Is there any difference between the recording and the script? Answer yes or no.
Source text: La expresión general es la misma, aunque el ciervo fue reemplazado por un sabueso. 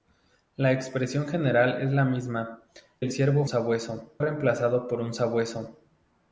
yes